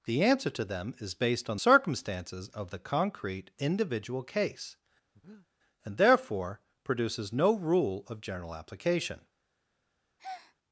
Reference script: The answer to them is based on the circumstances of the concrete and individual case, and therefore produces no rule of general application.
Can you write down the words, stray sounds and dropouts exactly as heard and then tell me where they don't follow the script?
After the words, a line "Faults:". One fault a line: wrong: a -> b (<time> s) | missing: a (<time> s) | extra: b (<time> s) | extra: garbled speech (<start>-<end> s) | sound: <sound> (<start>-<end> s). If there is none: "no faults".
The answer to them is based on circumstances of the concrete individual case, and therefore produces no rule of general application.
Faults:
missing: the (1.6 s)
missing: and (3.5 s)
sound: breath (5.1-5.5 s)
sound: breath (10.2-10.6 s)